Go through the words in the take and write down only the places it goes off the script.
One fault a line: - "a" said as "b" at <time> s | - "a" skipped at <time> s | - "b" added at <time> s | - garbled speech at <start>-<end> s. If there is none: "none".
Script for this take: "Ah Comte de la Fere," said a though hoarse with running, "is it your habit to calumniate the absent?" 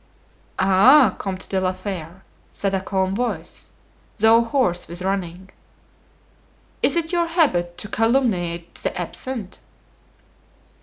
- "calm voice" added at 2.8 s